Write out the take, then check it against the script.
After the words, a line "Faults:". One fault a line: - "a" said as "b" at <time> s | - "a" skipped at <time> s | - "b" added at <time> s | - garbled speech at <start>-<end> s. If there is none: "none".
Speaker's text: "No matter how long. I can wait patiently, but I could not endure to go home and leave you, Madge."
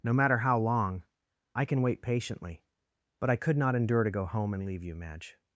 "No matter how long. I can wait patiently, but I could not endure to go home and leave you, Madge."
Faults:
none